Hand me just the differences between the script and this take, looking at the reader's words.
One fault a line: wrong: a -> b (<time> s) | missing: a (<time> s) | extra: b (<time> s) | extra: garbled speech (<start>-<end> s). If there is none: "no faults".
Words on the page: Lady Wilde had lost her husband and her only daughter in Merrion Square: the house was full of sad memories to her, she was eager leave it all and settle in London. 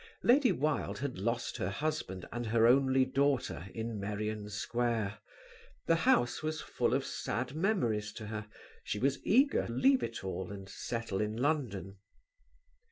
no faults